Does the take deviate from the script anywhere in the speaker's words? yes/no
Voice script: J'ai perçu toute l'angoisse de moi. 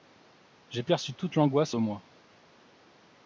no